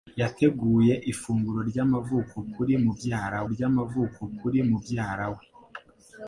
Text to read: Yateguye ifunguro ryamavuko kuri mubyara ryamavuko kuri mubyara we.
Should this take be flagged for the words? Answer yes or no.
no